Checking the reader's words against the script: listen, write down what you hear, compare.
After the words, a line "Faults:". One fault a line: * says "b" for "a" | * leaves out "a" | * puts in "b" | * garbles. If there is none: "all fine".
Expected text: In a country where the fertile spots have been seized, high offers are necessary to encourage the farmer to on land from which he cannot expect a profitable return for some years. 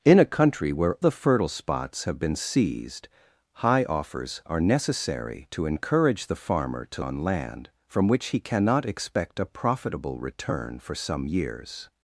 In a country where the fertile spots have been seized, high offers are necessary to encourage the farmer to on land from which he cannot expect a profitable return for some years.
Faults:
all fine